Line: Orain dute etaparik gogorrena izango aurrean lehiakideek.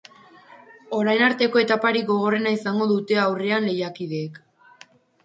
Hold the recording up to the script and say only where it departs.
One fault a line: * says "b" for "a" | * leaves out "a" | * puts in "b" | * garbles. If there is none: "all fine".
* says "arteko" for "dute"
* puts in "dute"